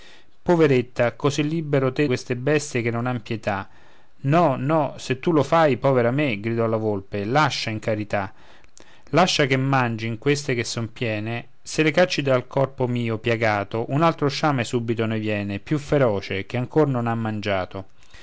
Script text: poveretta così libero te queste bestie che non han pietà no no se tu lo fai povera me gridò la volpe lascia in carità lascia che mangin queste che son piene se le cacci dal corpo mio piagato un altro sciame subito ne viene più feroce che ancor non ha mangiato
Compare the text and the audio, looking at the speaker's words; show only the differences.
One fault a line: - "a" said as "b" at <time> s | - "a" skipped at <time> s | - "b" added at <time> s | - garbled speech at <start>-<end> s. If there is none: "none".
none